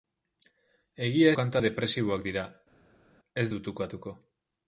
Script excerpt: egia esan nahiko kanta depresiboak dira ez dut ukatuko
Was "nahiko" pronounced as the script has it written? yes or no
no